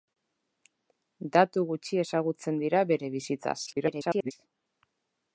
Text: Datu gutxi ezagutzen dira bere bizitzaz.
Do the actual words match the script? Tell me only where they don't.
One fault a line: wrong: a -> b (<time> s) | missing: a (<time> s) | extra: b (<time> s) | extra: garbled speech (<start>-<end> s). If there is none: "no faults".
extra: garbled speech (3.7-4.3 s)